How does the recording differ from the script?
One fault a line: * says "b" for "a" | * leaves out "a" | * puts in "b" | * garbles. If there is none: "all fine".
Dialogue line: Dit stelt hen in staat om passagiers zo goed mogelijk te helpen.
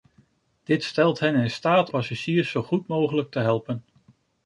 * leaves out "om"